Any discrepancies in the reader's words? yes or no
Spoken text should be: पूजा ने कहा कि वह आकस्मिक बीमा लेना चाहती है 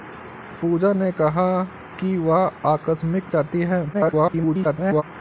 yes